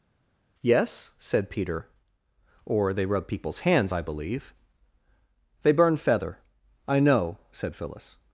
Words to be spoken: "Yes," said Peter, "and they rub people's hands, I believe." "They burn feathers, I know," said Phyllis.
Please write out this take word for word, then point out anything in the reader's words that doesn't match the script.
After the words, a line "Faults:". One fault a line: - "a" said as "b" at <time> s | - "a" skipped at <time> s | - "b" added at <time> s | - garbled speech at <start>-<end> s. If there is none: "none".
"Yes," said Peter, "or they rub people's hands, I believe." "They burn feather, I know," said Phyllis.
Faults:
- "and" said as "or" at 2.6 s
- "feathers" said as "feather" at 6.0 s